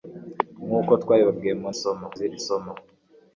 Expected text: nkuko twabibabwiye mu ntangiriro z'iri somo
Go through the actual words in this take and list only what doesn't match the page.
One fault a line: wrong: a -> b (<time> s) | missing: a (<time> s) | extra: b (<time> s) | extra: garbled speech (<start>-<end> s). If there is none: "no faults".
wrong: ntangiriro -> somo (1.8 s)